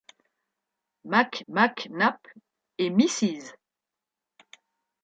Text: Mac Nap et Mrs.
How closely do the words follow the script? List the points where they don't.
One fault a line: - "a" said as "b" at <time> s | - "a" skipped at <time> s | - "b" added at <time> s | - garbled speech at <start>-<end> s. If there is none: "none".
- "mac" added at 1.5 s